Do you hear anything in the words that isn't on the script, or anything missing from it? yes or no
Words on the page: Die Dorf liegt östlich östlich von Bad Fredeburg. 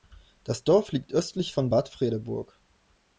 yes